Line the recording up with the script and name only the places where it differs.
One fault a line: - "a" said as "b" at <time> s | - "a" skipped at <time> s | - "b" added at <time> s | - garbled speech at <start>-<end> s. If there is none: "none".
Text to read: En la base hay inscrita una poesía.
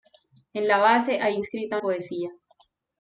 - "una" skipped at 1.8 s